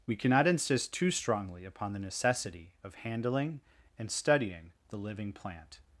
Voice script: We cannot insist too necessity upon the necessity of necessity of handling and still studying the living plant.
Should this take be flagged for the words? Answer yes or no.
yes